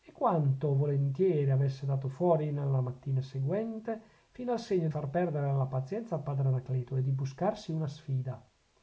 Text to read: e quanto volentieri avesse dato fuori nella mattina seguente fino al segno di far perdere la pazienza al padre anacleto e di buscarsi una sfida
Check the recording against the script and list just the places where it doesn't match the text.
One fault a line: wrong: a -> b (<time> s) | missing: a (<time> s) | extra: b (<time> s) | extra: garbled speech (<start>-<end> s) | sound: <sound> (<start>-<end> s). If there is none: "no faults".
missing: di (4.9 s)